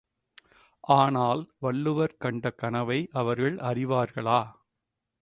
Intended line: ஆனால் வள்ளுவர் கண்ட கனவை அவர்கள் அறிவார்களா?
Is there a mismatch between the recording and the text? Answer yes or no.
no